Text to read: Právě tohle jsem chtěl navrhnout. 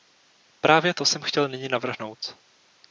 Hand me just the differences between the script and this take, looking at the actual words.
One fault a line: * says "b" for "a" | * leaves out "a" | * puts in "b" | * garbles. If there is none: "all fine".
* says "to" for "tohle"
* puts in "nyní"